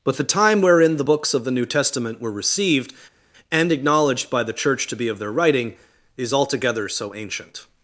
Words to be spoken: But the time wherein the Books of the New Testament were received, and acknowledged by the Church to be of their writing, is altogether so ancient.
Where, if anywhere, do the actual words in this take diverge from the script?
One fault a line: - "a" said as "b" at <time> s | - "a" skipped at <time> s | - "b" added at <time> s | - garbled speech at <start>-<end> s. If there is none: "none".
none